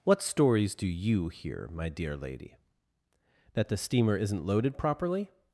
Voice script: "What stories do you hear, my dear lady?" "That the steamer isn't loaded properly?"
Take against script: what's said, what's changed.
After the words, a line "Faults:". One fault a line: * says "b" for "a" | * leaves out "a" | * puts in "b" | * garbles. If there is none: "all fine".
"What stories do you hear, my dear lady?" "That the steamer isn't loaded properly?"
Faults:
all fine